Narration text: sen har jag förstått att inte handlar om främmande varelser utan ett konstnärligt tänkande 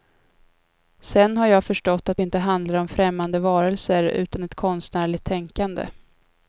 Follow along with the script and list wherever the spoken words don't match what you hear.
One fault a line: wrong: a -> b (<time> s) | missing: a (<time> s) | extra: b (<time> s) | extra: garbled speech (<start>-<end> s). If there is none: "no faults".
no faults